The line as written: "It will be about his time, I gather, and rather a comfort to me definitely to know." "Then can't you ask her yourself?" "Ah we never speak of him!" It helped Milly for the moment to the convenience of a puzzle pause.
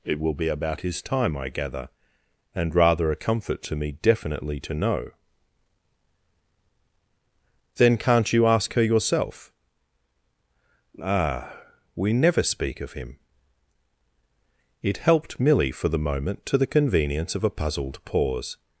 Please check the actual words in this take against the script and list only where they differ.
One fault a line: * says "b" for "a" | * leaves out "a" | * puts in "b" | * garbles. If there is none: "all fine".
* says "puzzled" for "puzzle"